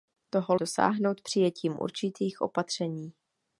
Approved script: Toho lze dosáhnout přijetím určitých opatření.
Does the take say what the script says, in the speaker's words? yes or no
no